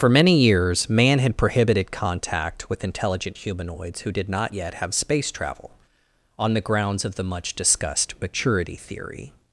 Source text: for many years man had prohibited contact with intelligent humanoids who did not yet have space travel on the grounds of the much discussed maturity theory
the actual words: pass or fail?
pass